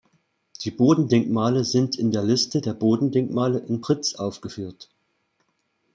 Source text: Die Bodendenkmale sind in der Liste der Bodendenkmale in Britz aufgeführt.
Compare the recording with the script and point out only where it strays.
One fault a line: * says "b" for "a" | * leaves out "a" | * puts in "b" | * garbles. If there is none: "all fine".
all fine